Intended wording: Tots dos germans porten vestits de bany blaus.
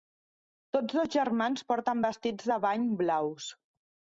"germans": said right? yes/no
yes